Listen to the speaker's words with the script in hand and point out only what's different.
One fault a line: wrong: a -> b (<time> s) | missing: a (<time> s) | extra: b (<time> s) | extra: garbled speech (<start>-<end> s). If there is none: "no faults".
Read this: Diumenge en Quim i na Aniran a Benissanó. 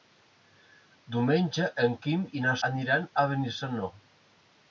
no faults